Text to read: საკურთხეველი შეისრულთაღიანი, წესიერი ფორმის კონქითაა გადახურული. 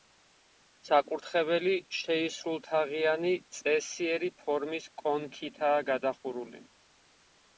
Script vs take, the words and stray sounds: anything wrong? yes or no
no